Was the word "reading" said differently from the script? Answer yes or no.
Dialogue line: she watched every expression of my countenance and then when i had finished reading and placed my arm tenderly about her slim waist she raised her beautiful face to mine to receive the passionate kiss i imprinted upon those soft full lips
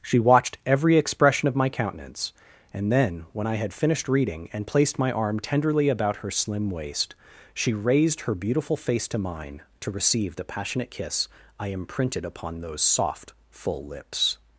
no